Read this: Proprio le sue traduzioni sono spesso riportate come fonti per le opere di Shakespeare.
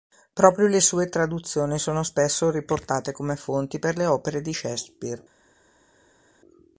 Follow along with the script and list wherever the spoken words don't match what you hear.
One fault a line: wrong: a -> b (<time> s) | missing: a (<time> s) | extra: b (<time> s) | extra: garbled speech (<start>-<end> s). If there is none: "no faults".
no faults